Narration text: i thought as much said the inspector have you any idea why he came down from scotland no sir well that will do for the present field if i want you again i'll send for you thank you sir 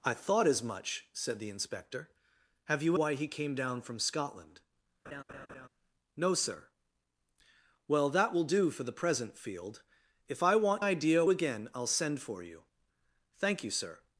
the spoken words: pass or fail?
fail